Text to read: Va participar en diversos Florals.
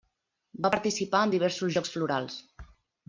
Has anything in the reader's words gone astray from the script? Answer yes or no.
yes